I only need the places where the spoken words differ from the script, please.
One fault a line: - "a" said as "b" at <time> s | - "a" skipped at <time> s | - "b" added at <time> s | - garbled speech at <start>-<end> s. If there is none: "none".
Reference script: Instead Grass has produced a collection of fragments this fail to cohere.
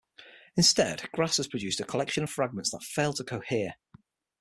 - "this" said as "that" at 2.7 s